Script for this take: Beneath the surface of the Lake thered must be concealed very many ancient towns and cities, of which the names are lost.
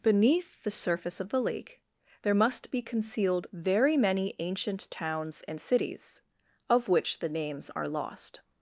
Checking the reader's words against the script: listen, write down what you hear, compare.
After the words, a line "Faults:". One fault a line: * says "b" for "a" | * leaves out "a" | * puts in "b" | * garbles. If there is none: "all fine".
Beneath the surface of the Lake there must be concealed very many ancient towns and cities, of which the names are lost.
Faults:
* says "there" for "thered"